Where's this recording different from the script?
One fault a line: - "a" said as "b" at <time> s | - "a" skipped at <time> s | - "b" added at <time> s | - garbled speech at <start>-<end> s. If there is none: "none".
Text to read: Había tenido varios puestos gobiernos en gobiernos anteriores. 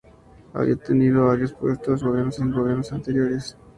none